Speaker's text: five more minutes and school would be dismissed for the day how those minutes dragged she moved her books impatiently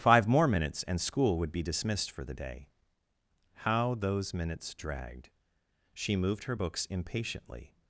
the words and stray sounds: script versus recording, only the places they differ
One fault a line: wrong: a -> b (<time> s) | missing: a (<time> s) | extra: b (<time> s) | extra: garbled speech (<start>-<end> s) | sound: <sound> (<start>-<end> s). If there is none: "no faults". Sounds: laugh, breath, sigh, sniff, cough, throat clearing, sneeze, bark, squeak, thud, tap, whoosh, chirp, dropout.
no faults